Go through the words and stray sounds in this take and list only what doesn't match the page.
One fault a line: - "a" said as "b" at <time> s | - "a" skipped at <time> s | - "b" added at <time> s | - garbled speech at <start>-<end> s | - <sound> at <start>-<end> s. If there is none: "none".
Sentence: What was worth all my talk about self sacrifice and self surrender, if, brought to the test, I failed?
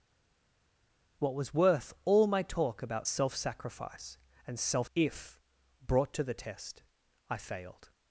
- "surrender" skipped at 4.9 s